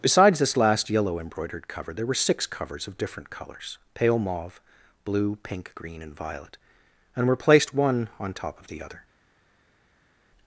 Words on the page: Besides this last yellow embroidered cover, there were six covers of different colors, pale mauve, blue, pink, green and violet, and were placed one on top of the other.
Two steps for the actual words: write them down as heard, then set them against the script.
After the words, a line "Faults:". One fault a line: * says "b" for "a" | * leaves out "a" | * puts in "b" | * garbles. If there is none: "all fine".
Besides this last yellow embroidered cover, there were six covers of different colors, pale mauve, blue, pink, green and violet, and were placed one on top of the other.
Faults:
all fine